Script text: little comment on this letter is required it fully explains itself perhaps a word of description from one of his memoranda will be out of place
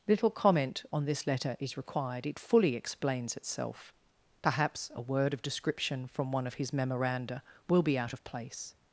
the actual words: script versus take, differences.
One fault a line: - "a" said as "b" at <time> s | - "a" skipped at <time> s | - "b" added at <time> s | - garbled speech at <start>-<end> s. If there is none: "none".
none